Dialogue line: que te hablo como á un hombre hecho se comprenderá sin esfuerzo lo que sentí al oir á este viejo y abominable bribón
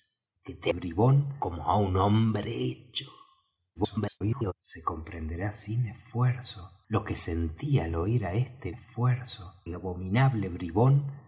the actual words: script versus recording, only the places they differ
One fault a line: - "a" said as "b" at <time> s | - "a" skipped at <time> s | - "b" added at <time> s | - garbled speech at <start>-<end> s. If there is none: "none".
- "hablo" said as "bribón" at 0.7 s
- garbled speech at 3.8-4.5 s
- "viejo" said as "esfuerzo" at 8.7 s